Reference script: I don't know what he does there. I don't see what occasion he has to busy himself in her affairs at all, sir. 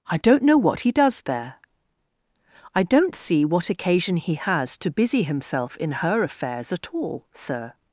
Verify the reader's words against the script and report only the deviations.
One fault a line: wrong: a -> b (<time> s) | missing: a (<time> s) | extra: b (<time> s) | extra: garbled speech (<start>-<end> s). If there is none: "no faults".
no faults